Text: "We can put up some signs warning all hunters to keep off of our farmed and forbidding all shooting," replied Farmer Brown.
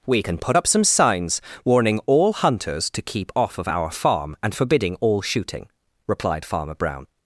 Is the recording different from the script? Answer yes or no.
yes